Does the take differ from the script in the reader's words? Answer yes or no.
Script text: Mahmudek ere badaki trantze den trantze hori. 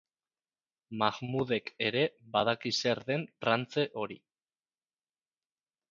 yes